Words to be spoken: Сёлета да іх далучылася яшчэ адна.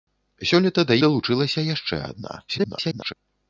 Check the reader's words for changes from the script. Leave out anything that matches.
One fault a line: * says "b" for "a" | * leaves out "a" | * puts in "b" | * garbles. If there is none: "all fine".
* leaves out "іх"
* garbles